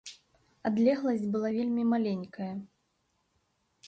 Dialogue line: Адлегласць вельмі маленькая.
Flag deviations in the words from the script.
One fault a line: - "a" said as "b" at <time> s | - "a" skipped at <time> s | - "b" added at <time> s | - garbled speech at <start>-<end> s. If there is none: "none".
- "была" added at 1.4 s